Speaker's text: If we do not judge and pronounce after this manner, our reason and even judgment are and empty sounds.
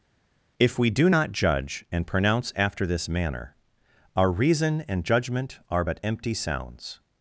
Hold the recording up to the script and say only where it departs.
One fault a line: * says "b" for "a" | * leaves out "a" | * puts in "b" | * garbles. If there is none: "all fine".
* leaves out "even"
* says "but" for "and"